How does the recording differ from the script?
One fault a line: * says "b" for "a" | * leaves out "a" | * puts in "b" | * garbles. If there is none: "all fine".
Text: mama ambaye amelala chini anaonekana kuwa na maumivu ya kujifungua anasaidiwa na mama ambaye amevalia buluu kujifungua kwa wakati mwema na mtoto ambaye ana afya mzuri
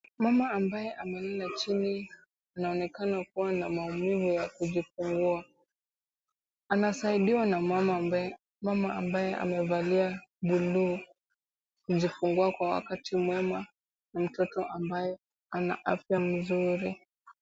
all fine